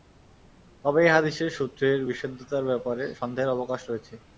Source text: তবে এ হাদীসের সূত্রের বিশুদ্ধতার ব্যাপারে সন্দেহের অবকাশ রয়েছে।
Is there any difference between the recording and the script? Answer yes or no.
no